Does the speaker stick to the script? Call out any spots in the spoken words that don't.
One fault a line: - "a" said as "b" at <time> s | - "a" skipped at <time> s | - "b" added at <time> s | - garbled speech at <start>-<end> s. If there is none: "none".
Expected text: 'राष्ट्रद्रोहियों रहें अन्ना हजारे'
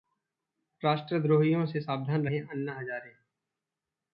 - "से सावधान" added at 1.6 s